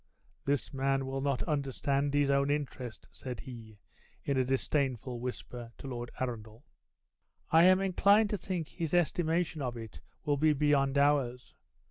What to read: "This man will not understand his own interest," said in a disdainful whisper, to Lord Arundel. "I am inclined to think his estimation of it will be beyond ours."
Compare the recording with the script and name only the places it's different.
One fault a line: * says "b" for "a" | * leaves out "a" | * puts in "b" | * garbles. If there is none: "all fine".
* puts in "he"